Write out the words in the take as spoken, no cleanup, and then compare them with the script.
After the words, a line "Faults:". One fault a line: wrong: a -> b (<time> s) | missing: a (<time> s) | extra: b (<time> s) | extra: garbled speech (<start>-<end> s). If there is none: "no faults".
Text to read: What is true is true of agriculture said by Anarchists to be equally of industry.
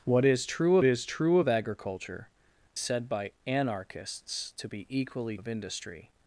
What is true is true of agriculture said by Anarchists to be equally of industry.
Faults:
no faults